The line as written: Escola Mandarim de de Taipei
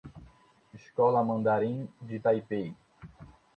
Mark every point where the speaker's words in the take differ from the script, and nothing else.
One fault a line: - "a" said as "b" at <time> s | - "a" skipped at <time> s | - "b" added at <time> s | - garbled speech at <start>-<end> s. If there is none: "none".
- "de" skipped at 2.2 s